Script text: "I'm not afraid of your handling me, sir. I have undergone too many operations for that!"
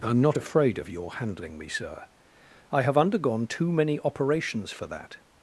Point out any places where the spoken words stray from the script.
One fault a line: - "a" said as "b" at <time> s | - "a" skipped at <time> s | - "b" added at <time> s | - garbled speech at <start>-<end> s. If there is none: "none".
none